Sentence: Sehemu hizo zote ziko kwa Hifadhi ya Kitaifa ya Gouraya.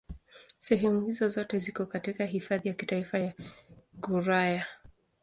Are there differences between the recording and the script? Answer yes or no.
yes